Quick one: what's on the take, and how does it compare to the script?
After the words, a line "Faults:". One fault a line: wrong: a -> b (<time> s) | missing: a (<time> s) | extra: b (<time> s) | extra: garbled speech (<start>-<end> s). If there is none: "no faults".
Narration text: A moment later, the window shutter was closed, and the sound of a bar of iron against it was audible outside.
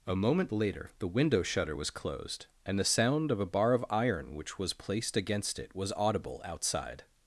A moment later, the window shutter was closed, and the sound of a bar of iron which was placed against it was audible outside.
Faults:
extra: which was placed (4.3 s)